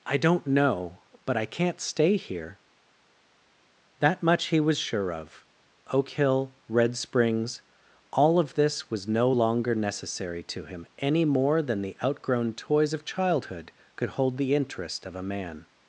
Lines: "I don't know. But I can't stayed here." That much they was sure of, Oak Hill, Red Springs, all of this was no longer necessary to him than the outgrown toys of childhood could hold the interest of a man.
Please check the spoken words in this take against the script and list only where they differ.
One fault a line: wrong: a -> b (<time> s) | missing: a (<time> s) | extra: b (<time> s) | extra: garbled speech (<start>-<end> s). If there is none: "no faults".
wrong: stayed -> stay (1.8 s)
wrong: they -> he (4.5 s)
extra: any more (11.0 s)